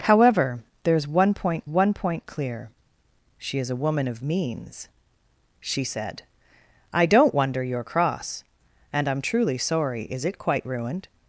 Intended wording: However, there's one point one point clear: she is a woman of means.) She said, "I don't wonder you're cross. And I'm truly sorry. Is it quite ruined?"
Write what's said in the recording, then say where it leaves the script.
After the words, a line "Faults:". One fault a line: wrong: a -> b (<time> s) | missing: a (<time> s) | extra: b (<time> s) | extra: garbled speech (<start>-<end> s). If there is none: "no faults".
However, there's one point one point clear: she is a woman of means.) She said, "I don't wonder you're cross. And I'm truly sorry. Is it quite ruined?"
Faults:
no faults